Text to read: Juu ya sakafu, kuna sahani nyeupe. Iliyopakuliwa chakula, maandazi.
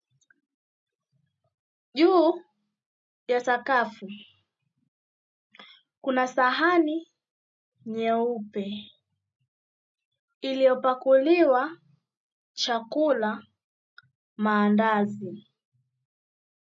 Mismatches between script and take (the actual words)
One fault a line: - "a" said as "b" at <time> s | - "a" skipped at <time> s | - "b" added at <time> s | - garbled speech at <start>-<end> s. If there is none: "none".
none